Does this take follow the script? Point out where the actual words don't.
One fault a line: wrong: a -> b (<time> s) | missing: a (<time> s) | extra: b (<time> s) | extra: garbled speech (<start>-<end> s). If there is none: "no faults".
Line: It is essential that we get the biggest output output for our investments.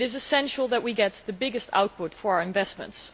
missing: output (2.1 s)